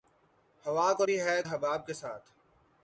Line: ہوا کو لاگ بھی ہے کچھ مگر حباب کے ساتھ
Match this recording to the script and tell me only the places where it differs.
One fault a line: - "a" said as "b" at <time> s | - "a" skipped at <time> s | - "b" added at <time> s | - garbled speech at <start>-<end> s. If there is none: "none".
- "لاگ" skipped at 1.0 s
- "کچھ مگر" skipped at 1.4 s